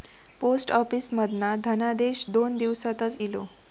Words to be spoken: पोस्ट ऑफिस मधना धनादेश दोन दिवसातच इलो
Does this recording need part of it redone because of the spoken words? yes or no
no